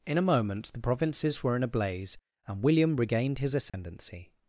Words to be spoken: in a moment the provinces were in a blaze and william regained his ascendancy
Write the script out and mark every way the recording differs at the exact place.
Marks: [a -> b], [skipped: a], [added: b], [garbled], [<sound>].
in a moment the provinces were in a blaze and william regained his ascendancy [dropout]